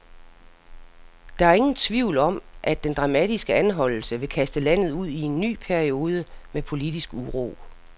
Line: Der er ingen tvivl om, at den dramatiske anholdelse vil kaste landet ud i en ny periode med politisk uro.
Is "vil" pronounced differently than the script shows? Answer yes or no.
no